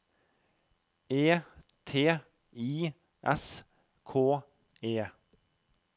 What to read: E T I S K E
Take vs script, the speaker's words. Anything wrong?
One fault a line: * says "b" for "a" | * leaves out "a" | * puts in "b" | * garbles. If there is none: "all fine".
all fine